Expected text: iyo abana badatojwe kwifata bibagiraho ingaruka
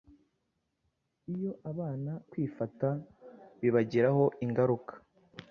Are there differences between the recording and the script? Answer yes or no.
yes